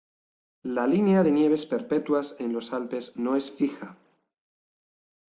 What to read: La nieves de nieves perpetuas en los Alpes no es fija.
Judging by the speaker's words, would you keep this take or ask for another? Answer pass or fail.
fail